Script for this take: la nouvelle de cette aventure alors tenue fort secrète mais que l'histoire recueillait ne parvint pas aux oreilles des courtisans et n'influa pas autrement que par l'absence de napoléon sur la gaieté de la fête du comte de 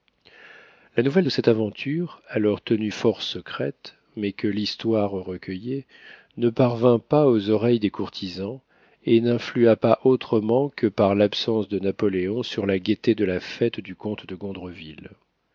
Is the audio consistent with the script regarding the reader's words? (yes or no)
yes